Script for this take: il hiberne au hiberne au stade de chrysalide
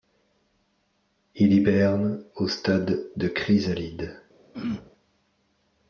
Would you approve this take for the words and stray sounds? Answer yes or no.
no